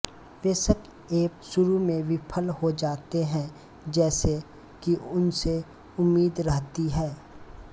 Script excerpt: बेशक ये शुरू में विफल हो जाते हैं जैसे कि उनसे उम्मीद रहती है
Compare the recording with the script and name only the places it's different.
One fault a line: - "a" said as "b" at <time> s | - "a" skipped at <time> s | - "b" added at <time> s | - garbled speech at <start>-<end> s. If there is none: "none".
none